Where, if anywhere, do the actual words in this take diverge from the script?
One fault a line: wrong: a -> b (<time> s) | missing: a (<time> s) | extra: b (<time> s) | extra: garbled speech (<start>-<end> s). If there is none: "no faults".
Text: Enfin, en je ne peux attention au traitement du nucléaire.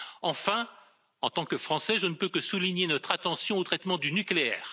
extra: tant que Français (1.3 s)
extra: que souligner notre (2.3 s)